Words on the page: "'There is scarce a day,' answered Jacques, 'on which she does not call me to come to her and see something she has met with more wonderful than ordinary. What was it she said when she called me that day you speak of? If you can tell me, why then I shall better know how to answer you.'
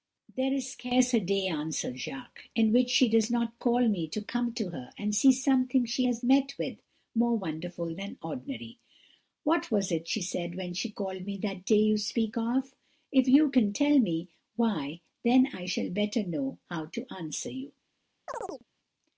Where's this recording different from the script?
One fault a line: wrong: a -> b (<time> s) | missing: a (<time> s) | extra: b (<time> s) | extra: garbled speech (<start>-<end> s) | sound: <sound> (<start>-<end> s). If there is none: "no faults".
wrong: on -> in (2.5 s)
sound: chirp (18.3-18.6 s)